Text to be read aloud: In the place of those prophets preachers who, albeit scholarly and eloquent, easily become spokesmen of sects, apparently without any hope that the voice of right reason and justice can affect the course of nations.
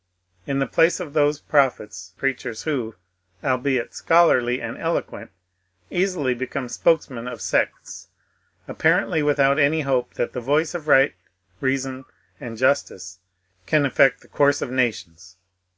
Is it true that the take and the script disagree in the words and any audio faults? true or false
false